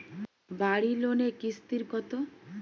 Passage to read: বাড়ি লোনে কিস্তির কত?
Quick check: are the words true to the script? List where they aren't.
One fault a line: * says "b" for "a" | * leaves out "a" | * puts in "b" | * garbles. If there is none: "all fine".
all fine